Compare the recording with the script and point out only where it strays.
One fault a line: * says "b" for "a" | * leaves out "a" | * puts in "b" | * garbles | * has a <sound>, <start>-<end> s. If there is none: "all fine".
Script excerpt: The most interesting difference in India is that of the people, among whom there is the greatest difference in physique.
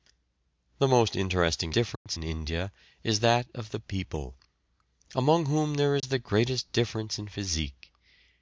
* has a dropout, 2.0-2.1 s
* has a dropout, 6.0-6.0 s